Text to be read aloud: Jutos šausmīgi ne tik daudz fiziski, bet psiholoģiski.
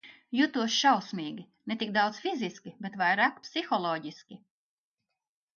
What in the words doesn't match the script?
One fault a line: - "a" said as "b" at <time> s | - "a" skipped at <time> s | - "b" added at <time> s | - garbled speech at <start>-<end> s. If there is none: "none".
- "vairāk" added at 3.0 s